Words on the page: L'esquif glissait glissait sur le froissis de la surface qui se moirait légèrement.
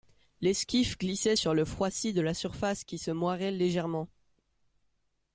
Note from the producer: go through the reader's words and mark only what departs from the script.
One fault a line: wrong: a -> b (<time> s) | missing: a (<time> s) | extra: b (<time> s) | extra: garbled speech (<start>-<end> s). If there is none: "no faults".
missing: glissait (1.4 s)